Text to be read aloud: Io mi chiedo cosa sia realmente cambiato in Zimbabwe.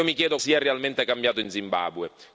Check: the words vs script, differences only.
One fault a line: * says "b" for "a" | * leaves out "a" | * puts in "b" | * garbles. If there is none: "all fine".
* leaves out "cosa"